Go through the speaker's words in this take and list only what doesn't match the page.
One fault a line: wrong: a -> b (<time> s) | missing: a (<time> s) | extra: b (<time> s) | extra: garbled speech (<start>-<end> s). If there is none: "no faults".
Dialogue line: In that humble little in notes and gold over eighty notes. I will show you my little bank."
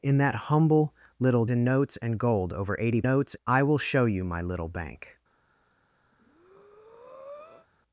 no faults